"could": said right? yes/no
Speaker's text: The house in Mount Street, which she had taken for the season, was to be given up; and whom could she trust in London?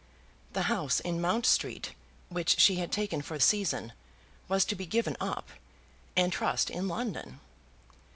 no